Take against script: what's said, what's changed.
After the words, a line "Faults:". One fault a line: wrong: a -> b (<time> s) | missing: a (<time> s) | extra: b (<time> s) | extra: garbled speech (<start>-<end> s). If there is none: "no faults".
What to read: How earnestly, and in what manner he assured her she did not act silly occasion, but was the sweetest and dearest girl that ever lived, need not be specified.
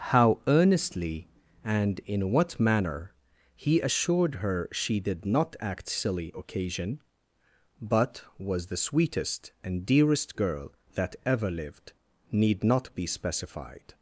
How earnestly, and in what manner he assured her she did not act silly occasion, but was the sweetest and dearest girl that ever lived, need not be specified.
Faults:
no faults